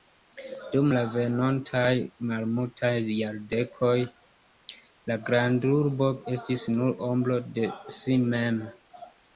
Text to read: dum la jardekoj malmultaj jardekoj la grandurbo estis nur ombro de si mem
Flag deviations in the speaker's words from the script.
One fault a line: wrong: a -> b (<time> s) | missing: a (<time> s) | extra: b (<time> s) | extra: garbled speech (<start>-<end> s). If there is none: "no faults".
wrong: jardekoj -> venontaj (1.1 s)